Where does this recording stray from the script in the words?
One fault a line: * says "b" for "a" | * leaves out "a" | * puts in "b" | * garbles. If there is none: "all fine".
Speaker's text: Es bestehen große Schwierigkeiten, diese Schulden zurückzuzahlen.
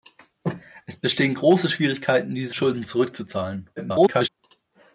* garbles